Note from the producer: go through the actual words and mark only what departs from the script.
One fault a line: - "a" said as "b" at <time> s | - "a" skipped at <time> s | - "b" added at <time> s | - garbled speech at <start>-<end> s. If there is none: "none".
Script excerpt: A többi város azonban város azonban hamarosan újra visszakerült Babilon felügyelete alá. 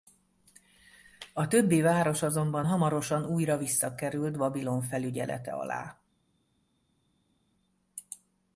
- "város azonban" skipped at 2.7 s